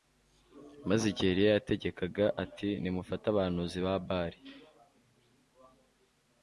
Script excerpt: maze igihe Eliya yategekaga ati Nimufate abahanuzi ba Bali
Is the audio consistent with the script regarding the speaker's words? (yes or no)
yes